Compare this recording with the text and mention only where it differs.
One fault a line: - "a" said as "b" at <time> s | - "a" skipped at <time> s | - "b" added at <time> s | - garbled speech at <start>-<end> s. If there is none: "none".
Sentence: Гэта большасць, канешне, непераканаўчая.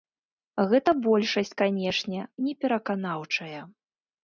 none